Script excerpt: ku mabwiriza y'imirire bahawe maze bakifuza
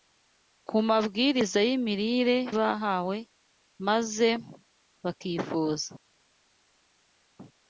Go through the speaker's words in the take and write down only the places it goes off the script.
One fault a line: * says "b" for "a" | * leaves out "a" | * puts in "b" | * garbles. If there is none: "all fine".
all fine